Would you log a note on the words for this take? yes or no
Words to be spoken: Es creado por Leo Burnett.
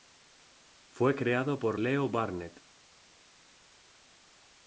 yes